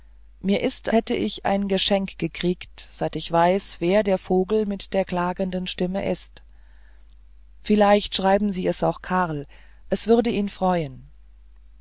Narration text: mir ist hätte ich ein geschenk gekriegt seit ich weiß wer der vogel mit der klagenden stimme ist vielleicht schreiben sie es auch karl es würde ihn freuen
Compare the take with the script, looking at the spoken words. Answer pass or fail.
pass